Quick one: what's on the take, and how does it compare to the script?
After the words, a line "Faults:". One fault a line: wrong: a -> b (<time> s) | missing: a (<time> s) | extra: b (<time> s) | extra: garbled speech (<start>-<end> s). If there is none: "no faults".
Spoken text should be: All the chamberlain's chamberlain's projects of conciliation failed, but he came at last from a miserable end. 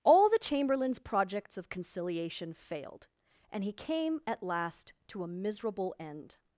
All the chamberlain's projects of conciliation failed, and he came at last to a miserable end.
Faults:
missing: chamberlain's (1.0 s)
wrong: but -> and (3.5 s)
wrong: from -> to (5.1 s)